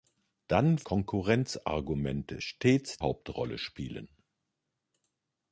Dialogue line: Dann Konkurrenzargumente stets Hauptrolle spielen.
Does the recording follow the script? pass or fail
pass